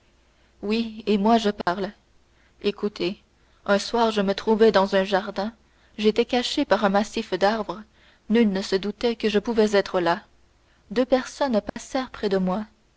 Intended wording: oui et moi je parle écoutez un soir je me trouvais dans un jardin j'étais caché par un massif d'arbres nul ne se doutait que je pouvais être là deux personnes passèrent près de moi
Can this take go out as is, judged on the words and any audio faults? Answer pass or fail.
fail